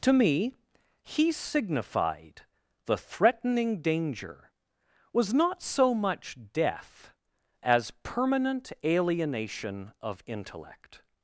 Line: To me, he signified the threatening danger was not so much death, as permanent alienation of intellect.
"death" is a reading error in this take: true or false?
false